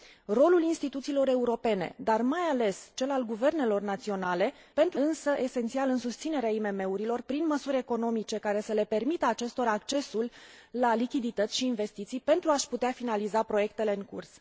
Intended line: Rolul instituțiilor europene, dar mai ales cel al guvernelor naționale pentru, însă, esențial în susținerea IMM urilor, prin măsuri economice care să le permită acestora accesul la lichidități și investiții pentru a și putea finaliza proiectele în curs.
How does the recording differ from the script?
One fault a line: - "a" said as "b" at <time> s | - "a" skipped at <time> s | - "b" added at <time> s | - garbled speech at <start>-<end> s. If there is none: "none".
none